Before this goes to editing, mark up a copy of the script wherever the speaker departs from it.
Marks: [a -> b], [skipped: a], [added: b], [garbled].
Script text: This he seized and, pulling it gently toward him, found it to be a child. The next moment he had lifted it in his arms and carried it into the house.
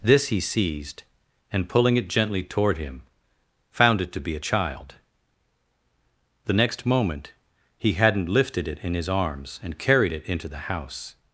This he seized and, pulling it gently toward him, found it to be a child. The next moment he [had -> hadn't] lifted it in his arms and carried it into the house.